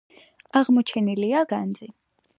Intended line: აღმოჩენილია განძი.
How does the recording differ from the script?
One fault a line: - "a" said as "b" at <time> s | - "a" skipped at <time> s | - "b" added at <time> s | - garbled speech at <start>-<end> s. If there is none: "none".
none